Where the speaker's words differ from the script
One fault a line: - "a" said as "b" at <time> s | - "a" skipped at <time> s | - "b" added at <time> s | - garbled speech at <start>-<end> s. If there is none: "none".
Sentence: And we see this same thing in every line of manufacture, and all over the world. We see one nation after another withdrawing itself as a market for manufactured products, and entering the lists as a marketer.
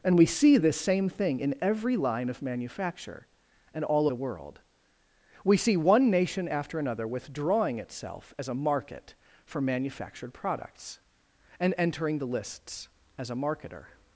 - "over" skipped at 4.1 s